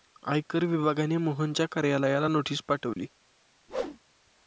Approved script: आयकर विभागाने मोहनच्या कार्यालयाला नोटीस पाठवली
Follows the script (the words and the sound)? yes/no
no